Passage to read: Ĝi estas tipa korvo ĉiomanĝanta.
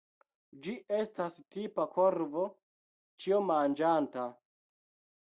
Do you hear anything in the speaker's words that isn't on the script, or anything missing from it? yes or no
no